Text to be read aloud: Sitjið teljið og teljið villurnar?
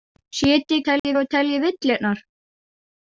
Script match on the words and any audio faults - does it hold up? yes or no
no